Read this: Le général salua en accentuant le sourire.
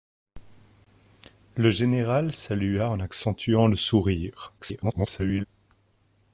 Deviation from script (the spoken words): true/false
true